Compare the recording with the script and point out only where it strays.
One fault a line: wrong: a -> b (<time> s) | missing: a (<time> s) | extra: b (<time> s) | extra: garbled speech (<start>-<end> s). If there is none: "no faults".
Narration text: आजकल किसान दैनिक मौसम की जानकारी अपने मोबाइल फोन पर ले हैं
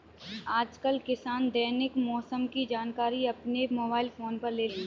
no faults